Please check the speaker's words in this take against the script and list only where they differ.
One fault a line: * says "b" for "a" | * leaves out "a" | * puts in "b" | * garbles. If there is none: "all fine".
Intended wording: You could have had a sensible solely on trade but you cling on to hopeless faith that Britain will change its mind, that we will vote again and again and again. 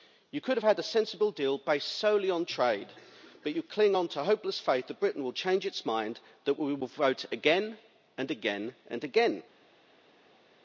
* puts in "deal based"